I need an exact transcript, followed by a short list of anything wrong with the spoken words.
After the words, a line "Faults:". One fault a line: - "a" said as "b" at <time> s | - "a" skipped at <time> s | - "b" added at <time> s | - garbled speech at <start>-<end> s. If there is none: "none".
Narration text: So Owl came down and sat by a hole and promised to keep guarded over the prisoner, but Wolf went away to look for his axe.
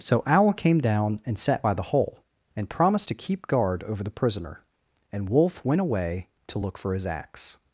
So Owl came down and sat by the hole and promised to keep guard over the prisoner, and Wolf went away to look for his axe.
Faults:
- "a" said as "the" at 1.7 s
- "guarded" said as "guard" at 3.5 s
- "but" said as "and" at 5.1 s